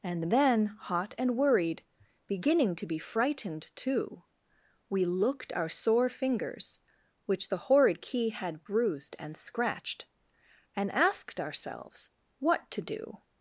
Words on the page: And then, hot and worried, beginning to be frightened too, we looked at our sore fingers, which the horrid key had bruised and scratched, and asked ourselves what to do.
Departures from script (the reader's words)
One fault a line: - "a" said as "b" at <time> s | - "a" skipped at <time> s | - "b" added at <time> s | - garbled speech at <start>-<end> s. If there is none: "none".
- "at" skipped at 5.5 s